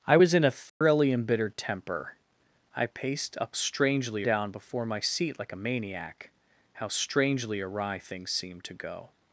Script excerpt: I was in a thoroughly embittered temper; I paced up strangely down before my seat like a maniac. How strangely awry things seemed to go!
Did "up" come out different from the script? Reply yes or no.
no